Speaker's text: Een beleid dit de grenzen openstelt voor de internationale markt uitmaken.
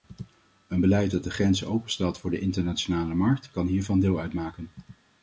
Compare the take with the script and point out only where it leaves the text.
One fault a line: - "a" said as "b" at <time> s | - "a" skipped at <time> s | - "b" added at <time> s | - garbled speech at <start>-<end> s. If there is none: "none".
- "dit" said as "dat" at 1.1 s
- "kan hiervan deel" added at 3.5 s